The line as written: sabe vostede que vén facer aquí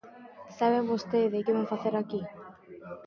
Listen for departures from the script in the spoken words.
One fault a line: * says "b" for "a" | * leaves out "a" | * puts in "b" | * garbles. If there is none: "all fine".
all fine